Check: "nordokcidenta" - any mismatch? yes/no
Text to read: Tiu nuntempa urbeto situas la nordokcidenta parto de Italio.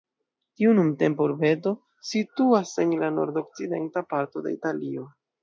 no